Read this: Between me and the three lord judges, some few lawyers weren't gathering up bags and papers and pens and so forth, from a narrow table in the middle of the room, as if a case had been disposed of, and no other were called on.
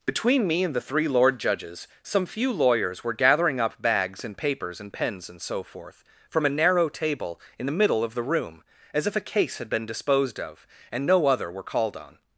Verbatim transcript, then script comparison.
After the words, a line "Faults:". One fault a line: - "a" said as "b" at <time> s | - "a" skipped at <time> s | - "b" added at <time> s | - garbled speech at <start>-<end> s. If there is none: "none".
Between me and the three lord judges, some few lawyers were gathering up bags and papers and pens and so forth, from a narrow table in the middle of the room, as if a case had been disposed of, and no other were called on.
Faults:
- "weren't" said as "were" at 3.0 s